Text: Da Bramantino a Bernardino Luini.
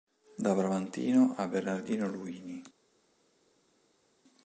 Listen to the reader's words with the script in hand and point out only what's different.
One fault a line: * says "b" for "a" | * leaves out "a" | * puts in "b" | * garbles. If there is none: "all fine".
all fine